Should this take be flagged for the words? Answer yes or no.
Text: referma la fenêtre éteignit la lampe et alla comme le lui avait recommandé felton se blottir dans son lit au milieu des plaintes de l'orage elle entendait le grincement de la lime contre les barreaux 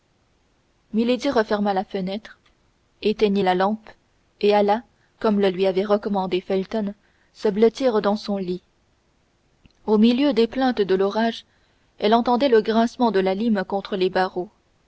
no